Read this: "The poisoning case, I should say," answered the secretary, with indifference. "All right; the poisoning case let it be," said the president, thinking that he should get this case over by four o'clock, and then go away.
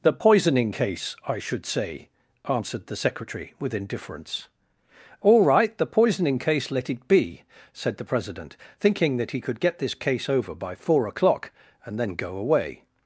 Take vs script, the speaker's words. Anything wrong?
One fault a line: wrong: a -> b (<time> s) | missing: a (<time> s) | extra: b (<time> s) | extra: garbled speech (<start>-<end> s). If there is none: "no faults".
wrong: should -> could (9.4 s)